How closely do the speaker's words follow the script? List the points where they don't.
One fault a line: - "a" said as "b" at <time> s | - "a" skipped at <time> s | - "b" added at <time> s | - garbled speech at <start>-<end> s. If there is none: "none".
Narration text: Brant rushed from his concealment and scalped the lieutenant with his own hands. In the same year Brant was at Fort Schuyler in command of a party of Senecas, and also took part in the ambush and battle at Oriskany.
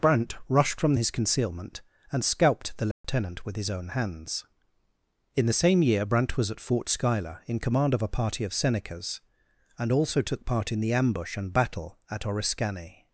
none